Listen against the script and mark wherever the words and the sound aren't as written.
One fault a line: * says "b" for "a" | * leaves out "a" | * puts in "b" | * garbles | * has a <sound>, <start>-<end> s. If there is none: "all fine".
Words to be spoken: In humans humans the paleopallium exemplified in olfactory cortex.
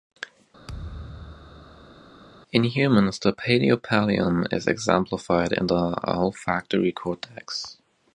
* has a thud, 0.7-2.1 s
* leaves out "humans"
* puts in "is"
* puts in "the"